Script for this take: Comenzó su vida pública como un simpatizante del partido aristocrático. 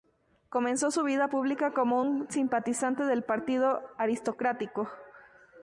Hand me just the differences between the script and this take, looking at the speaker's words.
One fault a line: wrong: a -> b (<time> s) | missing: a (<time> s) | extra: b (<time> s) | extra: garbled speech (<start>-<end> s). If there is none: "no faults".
no faults